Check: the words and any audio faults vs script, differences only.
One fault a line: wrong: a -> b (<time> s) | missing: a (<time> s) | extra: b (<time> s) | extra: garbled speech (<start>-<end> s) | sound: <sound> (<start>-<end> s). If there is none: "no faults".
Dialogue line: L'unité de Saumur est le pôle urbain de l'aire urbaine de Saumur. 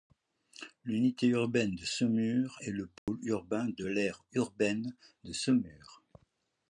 extra: urbaine (1.3 s)
sound: dropout (3.0-3.1 s)